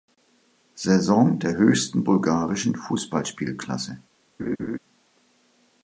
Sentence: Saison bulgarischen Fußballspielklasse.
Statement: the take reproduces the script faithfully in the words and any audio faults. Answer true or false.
false